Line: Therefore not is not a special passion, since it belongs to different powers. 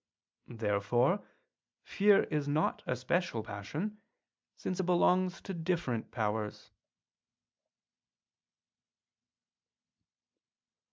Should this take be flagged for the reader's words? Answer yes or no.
yes